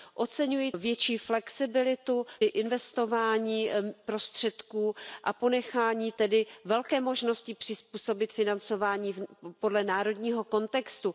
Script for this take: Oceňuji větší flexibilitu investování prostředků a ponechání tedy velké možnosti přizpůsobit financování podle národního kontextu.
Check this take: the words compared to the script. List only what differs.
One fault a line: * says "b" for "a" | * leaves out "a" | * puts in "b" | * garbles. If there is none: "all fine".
all fine